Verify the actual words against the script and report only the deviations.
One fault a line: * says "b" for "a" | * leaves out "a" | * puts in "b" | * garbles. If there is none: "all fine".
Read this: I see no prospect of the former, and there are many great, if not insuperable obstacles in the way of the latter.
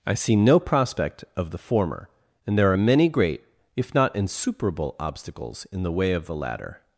all fine